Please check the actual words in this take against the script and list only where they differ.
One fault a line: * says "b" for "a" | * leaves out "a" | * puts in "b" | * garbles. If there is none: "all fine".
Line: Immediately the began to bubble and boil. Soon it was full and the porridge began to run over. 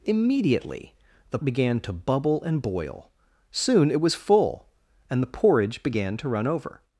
all fine